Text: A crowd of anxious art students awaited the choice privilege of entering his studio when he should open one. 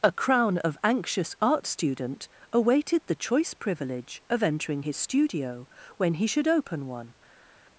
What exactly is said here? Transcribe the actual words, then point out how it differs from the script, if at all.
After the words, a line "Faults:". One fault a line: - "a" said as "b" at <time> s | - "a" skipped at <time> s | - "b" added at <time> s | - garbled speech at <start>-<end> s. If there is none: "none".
A crown of anxious art student awaited the choice privilege of entering his studio when he should open one.
Faults:
- "crowd" said as "crown" at 0.1 s
- "students" said as "student" at 1.7 s